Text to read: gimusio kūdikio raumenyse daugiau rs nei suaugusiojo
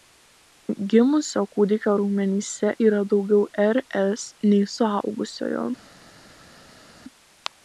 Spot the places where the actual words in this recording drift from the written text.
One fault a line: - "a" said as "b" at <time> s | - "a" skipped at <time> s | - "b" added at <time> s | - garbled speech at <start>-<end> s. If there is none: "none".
- "yra" added at 2.9 s